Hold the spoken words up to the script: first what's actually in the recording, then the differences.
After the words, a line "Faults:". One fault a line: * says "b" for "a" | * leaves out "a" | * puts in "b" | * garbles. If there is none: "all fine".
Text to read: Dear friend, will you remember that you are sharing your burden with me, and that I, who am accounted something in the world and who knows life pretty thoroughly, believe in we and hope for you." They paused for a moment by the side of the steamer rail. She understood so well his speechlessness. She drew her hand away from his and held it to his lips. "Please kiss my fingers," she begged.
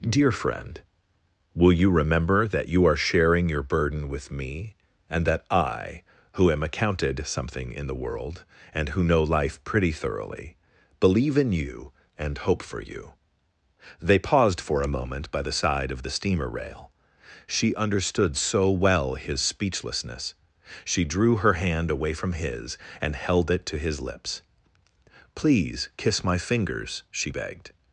Dear friend, will you remember that you are sharing your burden with me, and that I, who am accounted something in the world and who know life pretty thoroughly, believe in you and hope for you." They paused for a moment by the side of the steamer rail. She understood so well his speechlessness. She drew her hand away from his and held it to his lips. "Please kiss my fingers," she begged.
Faults:
* says "know" for "knows"
* says "you" for "we"